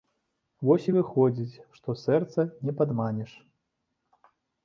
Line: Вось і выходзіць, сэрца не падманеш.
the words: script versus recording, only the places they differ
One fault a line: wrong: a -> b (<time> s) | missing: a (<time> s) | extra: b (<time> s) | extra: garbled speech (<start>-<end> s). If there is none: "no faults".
extra: што (1.8 s)